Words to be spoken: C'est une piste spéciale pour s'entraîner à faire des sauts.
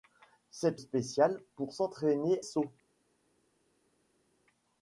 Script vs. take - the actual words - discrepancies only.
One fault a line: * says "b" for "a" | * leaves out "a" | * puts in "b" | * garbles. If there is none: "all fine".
* leaves out "une piste"
* leaves out "à faire des"